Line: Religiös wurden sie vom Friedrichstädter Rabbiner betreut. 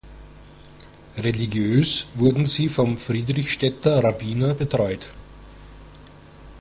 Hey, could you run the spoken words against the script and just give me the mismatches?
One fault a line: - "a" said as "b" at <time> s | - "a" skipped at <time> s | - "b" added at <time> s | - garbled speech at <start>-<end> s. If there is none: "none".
none